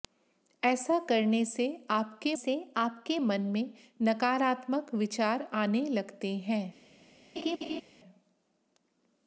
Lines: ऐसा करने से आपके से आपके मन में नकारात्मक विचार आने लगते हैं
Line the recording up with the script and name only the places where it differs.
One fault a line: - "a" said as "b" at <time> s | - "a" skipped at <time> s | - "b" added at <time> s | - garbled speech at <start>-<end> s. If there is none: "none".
none